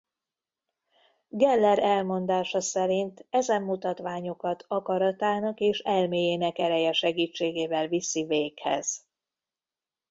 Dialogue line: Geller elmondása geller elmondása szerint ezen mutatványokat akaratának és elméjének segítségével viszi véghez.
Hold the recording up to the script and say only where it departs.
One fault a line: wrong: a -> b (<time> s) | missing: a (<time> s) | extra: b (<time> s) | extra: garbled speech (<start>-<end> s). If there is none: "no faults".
missing: geller elmondása (2.6 s)
extra: ereje (6.6 s)